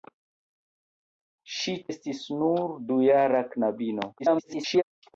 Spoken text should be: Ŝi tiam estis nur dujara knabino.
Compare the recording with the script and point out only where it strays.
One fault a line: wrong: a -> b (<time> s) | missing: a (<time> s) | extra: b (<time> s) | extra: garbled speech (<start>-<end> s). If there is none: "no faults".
missing: tiam (1.8 s)
extra: garbled speech (4.2-4.8 s)